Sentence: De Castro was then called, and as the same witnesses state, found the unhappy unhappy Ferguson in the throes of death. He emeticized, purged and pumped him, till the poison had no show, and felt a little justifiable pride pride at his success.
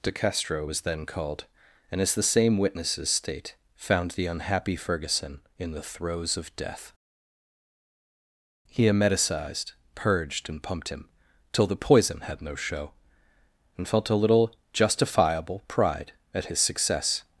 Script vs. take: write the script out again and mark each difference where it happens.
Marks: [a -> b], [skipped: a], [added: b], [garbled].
De Castro was then called, and as the same witnesses state, found the unhappy [skipped: unhappy] Ferguson in the throes of death. He emeticized, purged and pumped him, till the poison had no show, and felt a little justifiable pride [skipped: pride] at his success.